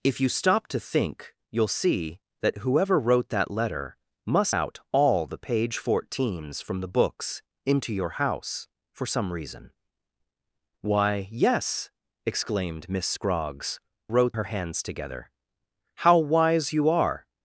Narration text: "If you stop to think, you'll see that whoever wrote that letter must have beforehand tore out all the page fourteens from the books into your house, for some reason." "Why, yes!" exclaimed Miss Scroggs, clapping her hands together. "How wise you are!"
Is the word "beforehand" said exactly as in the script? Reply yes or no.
no